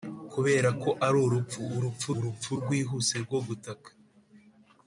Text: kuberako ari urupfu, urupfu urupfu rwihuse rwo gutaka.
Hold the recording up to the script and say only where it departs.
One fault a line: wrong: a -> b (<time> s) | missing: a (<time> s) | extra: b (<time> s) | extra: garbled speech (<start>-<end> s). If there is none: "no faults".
no faults